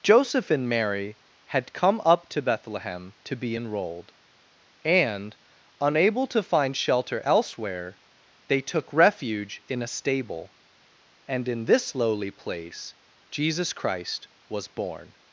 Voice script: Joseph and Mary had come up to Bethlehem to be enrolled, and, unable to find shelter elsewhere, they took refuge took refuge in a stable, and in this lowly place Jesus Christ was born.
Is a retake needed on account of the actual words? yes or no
yes